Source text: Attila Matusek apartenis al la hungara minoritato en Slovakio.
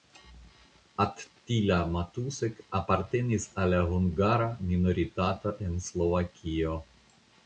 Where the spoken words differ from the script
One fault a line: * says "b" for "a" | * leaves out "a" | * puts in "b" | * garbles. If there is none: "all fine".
all fine